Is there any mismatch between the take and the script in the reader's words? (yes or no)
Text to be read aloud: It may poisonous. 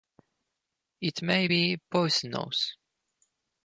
yes